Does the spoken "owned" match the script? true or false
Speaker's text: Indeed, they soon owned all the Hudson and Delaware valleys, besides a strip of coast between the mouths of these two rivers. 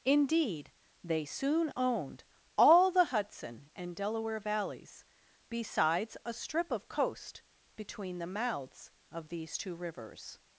true